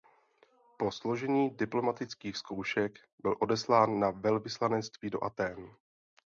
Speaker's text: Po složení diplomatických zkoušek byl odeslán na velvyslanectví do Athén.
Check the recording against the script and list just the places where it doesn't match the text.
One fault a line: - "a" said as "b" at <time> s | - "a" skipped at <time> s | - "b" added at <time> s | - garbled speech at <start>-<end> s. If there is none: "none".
none